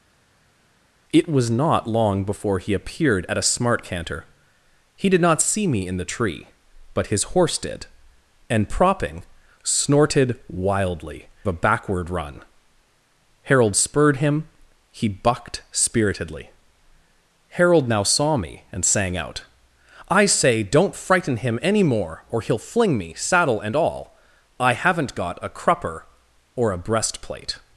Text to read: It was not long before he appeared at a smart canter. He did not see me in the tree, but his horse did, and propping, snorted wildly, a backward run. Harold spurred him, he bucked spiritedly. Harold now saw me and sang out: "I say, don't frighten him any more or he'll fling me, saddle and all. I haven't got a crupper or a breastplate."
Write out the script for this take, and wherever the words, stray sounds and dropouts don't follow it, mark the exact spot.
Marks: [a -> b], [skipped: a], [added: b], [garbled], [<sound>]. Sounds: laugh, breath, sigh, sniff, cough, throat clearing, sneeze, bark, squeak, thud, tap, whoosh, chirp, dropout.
It was not long before he appeared at a smart canter. He did not see me in the tree, but his horse did, and propping, snorted wildly, a backward run. Harold spurred him, he bucked spiritedly. Harold now saw me and sang out: "I say, don't frighten him any more or he'll fling me, saddle and all. I haven't got a crupper or a breastplate."